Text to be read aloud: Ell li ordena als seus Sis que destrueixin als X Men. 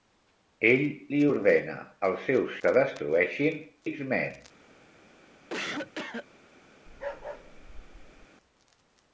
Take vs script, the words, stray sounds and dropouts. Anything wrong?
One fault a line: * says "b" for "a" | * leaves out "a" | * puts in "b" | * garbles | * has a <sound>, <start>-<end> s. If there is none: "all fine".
* leaves out "Sis"
* leaves out "als"
* has a cough, 5.5-6.3 s
* has a bark, 6.9-8.3 s